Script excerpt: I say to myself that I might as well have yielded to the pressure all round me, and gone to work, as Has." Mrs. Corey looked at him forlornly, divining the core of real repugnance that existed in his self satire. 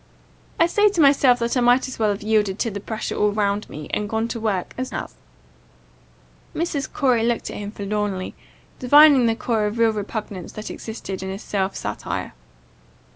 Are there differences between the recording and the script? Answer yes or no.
no